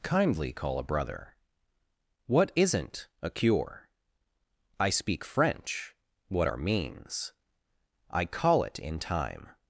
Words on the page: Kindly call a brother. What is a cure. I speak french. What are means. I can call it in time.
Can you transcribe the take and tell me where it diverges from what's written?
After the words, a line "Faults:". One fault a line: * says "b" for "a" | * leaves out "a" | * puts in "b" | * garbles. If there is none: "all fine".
Kindly call a brother. What isn't a cure. I speak french. What are means. I call it in time.
Faults:
* says "isn't" for "is"
* leaves out "can"